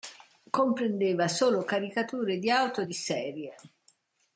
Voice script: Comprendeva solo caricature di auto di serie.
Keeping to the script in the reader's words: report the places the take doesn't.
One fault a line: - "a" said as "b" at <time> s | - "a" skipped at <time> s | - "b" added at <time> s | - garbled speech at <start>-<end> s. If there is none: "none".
none